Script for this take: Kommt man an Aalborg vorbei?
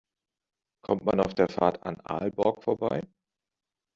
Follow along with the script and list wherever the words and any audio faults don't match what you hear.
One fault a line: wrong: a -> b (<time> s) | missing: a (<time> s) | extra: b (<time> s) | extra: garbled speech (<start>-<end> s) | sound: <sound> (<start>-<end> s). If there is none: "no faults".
extra: auf der Fahrt (1.2 s)